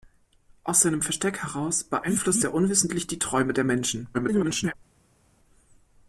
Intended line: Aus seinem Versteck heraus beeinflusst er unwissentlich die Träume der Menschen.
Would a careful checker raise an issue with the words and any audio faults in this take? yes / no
yes